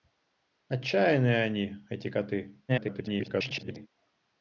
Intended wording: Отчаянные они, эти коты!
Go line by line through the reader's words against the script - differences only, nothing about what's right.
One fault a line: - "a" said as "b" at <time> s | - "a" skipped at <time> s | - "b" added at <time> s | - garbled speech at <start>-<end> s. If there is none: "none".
- garbled speech at 2.7-3.9 s